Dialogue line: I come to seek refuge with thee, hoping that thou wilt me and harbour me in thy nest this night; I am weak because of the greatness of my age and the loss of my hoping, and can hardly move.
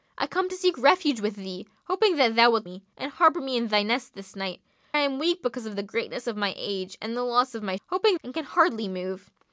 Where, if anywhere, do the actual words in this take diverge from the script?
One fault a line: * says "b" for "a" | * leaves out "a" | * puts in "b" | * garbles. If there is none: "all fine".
all fine